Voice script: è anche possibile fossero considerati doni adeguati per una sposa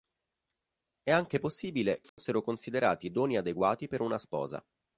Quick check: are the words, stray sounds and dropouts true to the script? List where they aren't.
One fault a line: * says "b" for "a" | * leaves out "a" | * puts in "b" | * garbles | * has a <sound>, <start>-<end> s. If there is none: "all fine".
* has a dropout, 2.1-2.2 s